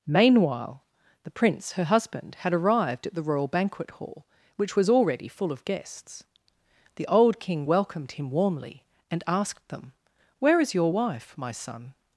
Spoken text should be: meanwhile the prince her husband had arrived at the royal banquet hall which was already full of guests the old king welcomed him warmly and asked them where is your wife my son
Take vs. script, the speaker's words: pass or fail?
pass